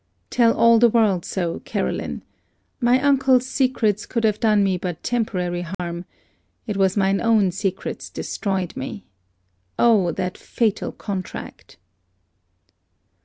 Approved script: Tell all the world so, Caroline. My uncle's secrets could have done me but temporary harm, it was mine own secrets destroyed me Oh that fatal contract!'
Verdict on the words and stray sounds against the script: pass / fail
fail